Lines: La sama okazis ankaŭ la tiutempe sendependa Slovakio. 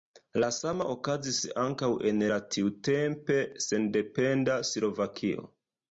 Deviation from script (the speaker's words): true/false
true